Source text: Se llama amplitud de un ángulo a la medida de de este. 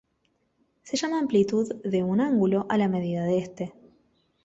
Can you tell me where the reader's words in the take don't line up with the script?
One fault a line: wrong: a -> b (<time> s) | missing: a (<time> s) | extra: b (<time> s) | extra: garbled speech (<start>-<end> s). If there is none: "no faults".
missing: de (3.4 s)